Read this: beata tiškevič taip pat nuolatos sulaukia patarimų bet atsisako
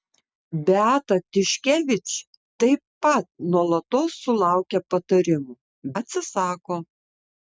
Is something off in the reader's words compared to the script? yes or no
yes